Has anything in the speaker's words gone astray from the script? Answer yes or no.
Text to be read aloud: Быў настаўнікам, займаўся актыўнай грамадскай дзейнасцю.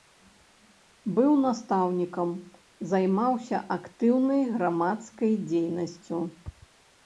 no